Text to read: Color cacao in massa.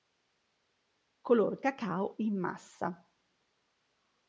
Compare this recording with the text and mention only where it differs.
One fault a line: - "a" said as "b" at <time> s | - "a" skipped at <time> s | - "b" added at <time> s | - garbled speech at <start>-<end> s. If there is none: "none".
none